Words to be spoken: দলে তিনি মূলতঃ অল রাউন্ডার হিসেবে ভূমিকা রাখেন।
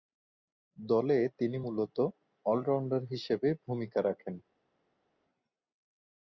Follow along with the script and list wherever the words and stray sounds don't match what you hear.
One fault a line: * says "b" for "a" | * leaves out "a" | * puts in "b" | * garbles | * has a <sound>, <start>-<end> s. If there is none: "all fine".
all fine